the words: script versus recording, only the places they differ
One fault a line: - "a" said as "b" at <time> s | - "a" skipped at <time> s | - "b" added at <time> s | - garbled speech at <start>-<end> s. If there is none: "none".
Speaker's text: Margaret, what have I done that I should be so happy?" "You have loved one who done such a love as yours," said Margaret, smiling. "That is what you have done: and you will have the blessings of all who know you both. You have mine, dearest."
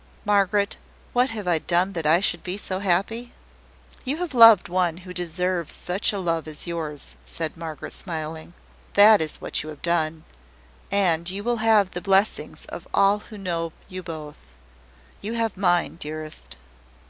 - "done" said as "deserves" at 5.1 s